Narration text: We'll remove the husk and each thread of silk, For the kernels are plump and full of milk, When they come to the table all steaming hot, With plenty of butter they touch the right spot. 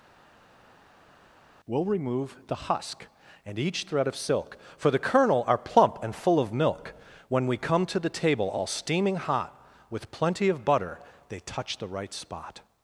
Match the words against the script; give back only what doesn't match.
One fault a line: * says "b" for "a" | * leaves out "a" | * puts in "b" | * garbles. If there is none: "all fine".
* says "kernel" for "kernels"
* says "we" for "they"